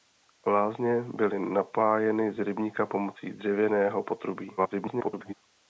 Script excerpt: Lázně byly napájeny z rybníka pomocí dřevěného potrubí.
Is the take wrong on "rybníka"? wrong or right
right